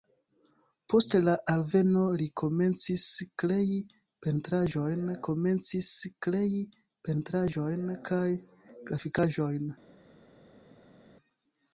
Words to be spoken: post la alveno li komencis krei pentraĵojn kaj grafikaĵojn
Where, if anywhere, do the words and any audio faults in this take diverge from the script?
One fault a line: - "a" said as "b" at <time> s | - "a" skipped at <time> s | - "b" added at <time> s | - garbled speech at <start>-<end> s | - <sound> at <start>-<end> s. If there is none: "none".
- "komencis krei pentraĵojn" added at 5.3 s